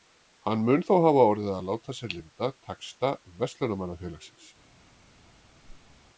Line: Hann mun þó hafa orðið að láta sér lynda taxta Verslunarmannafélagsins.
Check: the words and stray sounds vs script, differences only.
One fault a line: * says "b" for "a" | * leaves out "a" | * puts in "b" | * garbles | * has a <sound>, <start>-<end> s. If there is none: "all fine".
* has a whoosh, 5.6-6.0 s